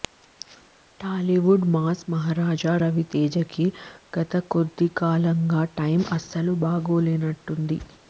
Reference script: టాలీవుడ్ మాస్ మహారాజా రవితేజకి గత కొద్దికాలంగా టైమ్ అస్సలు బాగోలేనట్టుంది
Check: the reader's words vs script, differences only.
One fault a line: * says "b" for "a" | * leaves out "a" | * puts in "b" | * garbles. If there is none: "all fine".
all fine